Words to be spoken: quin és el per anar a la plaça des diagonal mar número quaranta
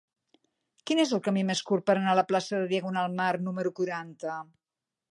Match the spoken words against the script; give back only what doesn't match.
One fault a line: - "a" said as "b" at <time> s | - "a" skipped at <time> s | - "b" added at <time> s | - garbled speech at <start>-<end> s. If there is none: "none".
- "camí més curt" added at 1.3 s
- "des" said as "de" at 2.6 s